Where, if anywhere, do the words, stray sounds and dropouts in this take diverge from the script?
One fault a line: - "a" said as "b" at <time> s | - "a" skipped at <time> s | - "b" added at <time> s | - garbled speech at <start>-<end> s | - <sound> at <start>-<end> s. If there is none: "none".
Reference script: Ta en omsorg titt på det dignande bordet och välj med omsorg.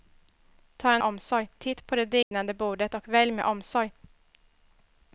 - dropout at 2.2-2.3 s